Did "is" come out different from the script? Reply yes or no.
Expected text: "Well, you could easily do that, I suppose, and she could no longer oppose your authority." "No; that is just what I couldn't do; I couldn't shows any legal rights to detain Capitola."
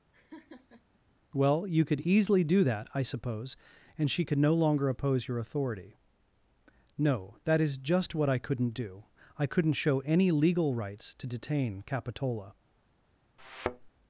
no